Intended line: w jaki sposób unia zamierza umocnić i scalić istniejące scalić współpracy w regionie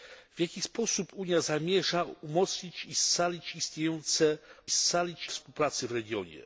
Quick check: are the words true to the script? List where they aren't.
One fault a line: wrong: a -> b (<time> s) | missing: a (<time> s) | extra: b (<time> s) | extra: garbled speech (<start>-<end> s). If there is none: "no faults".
no faults